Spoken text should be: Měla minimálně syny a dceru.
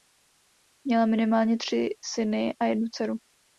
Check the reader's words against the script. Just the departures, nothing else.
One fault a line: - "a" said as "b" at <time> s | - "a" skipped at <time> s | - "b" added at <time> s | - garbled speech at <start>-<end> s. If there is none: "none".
- "tři" added at 1.6 s
- "jednu" added at 2.6 s